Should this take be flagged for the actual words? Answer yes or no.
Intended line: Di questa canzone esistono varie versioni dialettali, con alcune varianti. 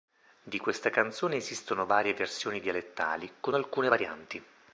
no